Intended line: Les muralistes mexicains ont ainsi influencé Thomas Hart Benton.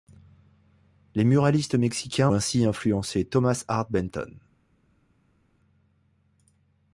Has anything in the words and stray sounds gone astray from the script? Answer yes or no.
yes